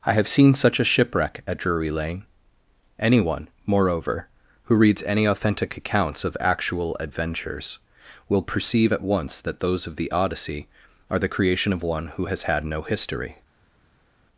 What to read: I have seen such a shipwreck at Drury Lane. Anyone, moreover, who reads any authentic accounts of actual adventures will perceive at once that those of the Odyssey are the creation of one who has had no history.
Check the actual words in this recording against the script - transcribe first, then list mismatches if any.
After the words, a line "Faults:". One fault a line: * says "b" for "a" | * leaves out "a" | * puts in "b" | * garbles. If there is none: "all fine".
I have seen such a shipwreck at Drury Lane. Anyone, moreover, who reads any authentic accounts of actual adventures will perceive at once that those of the Odyssey are the creation of one who has had no history.
Faults:
all fine